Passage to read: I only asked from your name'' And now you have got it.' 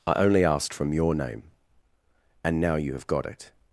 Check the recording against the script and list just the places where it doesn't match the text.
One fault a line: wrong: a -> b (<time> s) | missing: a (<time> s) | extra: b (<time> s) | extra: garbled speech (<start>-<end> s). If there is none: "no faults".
no faults